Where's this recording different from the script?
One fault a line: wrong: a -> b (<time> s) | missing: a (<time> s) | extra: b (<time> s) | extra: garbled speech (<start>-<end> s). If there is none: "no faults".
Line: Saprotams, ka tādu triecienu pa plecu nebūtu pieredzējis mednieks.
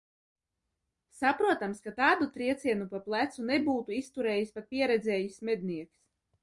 extra: izturējis pat (4.0 s)